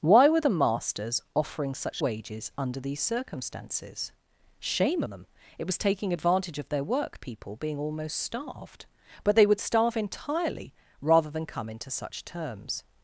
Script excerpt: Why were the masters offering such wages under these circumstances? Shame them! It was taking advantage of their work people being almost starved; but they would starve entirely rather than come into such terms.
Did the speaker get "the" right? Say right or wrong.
right